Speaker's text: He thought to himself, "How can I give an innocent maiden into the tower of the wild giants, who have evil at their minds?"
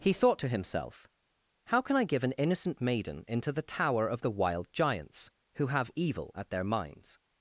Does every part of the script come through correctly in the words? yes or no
yes